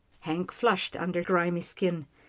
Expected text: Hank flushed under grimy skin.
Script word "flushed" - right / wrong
right